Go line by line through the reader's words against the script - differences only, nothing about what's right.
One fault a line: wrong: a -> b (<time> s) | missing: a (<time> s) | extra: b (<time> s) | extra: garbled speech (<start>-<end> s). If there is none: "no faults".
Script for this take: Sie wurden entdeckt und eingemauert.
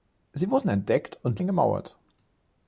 no faults